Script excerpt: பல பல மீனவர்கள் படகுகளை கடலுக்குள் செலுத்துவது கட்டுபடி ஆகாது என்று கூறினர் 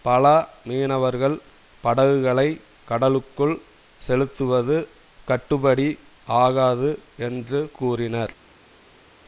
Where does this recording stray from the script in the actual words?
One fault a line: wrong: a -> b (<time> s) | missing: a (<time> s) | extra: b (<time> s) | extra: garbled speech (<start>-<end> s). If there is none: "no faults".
missing: பல (0.2 s)